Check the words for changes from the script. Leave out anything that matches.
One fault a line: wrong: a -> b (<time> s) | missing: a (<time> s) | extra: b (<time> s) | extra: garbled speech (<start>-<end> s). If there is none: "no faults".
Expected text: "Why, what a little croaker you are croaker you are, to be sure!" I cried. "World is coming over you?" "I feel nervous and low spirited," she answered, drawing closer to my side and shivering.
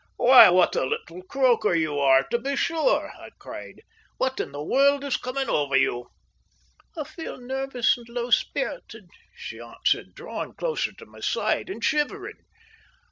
missing: croaker you are (2.2 s)
extra: What in the (4.2 s)